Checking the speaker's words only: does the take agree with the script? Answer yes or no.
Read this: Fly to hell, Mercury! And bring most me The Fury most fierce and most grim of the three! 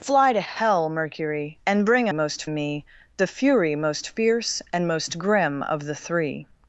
yes